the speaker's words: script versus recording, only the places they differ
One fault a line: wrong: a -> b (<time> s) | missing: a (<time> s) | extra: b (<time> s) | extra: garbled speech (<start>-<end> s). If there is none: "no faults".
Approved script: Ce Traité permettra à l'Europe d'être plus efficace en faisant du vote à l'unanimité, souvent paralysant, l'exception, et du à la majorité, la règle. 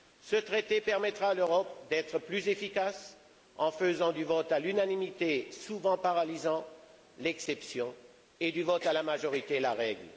extra: vote (8.6 s)